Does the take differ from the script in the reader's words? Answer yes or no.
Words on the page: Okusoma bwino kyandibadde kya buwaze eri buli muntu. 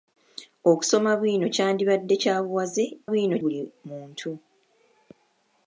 yes